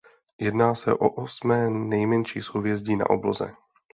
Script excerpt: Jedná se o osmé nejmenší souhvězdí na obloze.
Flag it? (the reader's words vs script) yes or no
no